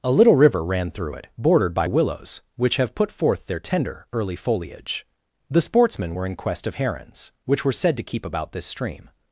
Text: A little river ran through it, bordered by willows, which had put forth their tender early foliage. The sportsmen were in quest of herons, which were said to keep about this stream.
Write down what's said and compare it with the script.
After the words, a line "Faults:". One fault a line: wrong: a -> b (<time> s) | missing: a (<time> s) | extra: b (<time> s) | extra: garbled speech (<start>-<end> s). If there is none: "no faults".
A little river ran through it, bordered by willows, which have put forth their tender early foliage. The sportsmen were in quest of herons, which were said to keep about this stream.
Faults:
wrong: had -> have (2.8 s)